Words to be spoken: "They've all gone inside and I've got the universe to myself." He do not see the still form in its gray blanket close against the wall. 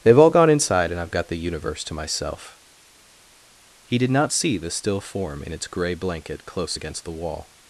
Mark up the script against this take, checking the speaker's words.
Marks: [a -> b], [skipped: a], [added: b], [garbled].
"They've all gone inside and I've got the universe to myself." He [do -> did] not see the still form in its gray blanket close against the wall.